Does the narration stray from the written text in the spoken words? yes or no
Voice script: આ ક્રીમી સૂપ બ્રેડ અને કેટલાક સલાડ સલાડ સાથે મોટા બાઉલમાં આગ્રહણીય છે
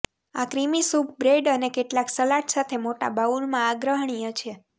yes